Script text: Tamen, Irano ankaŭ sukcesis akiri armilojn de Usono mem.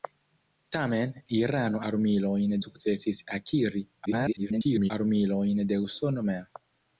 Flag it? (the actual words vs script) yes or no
yes